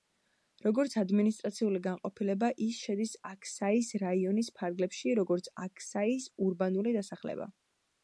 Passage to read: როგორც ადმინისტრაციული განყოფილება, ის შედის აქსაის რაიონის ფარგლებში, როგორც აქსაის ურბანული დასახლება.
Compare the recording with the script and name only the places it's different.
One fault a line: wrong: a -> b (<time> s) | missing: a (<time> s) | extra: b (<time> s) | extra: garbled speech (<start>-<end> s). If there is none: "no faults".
no faults